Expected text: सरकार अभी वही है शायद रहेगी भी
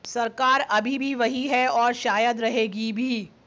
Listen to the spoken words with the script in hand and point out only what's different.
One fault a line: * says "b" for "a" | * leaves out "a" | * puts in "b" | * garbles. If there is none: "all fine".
* puts in "भी"
* puts in "और"